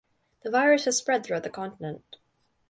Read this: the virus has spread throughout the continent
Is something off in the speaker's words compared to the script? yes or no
no